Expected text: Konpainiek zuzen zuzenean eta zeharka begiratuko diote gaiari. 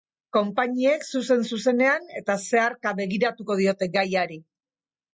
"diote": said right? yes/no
yes